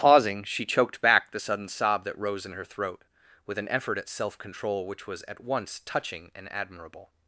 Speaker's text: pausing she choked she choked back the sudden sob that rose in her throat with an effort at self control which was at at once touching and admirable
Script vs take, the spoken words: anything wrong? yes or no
yes